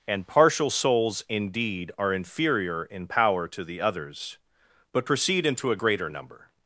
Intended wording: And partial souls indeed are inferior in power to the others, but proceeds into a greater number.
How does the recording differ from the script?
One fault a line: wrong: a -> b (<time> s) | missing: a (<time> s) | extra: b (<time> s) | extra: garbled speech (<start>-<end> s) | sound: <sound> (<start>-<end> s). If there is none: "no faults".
wrong: proceeds -> proceed (5.0 s)